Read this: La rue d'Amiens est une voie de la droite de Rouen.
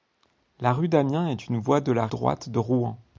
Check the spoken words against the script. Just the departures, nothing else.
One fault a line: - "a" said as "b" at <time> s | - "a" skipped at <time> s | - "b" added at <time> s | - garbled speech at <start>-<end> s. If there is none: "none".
none